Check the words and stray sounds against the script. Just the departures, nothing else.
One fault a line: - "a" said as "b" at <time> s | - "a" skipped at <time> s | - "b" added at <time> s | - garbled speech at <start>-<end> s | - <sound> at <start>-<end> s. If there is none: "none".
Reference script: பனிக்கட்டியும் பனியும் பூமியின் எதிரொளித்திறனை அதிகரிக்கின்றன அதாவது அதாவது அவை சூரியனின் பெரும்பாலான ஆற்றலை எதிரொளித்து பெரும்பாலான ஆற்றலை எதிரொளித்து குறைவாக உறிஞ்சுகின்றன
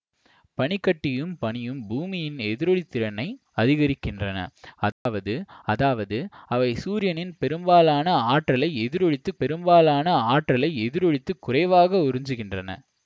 - dropout at 4.9-5.1 s